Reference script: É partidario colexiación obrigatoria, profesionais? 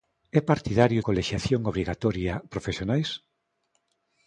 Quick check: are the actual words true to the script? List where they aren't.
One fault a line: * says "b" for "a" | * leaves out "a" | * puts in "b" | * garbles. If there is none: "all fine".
all fine